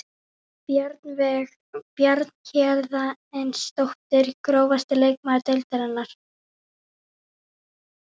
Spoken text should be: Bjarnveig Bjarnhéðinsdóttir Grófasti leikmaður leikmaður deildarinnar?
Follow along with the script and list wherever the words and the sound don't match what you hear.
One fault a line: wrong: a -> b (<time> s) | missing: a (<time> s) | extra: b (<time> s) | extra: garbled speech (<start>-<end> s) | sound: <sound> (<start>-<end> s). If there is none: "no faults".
missing: leikmaður (5.5 s)